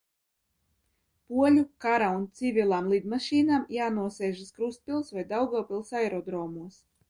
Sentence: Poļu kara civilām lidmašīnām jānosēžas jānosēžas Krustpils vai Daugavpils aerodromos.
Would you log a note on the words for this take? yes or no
yes